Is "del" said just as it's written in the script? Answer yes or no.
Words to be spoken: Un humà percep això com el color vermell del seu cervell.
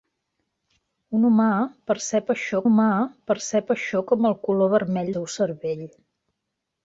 no